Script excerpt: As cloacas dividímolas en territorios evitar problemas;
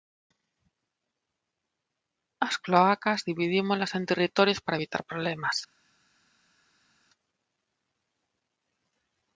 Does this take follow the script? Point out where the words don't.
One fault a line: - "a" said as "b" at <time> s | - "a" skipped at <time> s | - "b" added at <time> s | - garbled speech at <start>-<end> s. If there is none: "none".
- "para" added at 4.6 s